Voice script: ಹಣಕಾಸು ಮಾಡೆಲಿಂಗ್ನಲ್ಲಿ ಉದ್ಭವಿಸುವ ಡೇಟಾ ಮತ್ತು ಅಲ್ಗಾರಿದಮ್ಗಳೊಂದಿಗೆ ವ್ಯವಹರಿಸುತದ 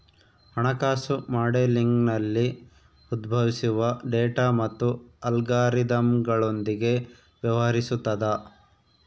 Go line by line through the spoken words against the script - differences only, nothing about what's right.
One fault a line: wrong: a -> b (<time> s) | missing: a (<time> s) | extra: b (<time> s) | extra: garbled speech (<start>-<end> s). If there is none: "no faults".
no faults